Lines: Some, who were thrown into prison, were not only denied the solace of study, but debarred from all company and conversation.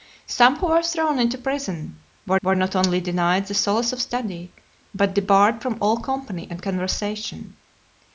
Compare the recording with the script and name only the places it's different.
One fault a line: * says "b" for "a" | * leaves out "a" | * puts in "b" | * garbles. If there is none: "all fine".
* puts in "were"